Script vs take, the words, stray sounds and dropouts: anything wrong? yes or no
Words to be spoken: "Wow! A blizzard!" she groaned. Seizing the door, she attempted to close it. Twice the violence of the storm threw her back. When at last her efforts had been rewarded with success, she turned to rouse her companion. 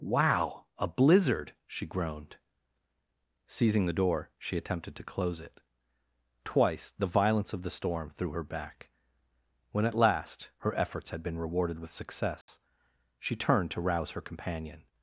yes